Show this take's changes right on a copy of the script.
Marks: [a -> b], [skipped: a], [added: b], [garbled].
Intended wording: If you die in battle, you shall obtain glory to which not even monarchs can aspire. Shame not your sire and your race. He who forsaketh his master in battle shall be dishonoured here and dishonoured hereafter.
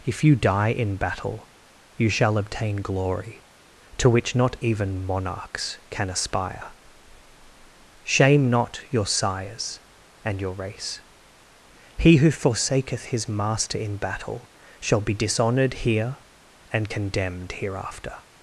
If you die in battle, you shall obtain glory to which not even monarchs can aspire. Shame not your [sire -> sires] and your race. He who forsaketh his master in battle shall be dishonoured here and [dishonoured -> condemned] hereafter.